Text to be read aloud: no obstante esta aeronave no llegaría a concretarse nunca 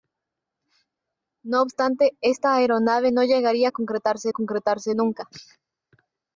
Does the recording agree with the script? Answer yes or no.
no